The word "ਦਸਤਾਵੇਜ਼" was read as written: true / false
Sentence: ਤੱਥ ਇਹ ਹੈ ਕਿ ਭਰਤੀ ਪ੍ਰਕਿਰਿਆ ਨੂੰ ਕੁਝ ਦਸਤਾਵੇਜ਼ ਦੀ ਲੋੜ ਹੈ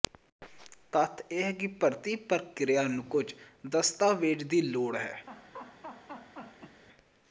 true